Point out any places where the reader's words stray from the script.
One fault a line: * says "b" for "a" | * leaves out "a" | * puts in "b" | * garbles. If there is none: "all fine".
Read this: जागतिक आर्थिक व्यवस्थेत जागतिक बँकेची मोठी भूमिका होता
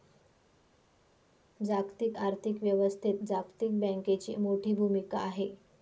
* says "आहे" for "होता"